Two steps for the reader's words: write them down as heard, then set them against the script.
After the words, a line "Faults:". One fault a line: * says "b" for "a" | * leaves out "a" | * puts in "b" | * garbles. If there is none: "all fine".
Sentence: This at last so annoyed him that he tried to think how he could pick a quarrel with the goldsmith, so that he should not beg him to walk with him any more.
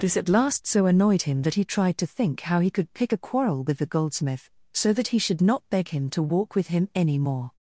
This at last so annoyed him that he tried to think how he could pick a quarrel with the goldsmith, so that he should not beg him to walk with him any more.
Faults:
all fine